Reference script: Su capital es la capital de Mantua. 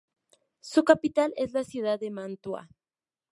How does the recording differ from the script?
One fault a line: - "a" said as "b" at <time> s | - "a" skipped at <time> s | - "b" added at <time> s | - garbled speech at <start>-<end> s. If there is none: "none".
- "capital" said as "ciudad" at 1.6 s